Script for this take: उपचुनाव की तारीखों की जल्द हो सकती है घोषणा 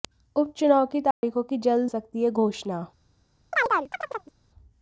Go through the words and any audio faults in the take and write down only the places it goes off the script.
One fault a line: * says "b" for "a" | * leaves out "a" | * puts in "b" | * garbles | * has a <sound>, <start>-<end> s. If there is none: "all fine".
* has a dropout, 1.1-1.2 s
* leaves out "हो"
* has a chirp, 3.5-4.3 s